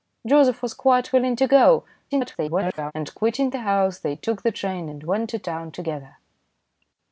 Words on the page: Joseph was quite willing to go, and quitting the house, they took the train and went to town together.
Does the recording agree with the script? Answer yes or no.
no